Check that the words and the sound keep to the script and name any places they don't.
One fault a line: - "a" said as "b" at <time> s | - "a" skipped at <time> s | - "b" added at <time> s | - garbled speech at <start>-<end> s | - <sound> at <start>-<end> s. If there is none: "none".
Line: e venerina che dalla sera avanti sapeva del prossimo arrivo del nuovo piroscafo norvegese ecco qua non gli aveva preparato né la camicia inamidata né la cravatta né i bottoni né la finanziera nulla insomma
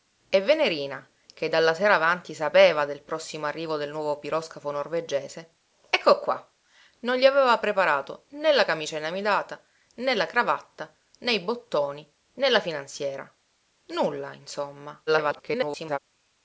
- garbled speech at 15.1-16.0 s